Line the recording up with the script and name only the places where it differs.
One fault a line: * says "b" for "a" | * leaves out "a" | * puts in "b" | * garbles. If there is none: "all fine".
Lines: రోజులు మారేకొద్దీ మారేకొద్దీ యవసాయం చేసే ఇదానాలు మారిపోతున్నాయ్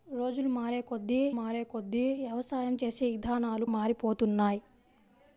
all fine